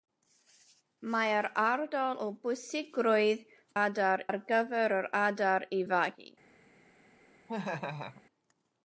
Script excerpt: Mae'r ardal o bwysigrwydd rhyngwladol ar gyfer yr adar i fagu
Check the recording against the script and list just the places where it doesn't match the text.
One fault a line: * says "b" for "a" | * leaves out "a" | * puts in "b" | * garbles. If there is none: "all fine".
* says "adar" for "rhyngwladol"